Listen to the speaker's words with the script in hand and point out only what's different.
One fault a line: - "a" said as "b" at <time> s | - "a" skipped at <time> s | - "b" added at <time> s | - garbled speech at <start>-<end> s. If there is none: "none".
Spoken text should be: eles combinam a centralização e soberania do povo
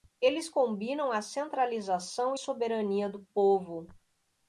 none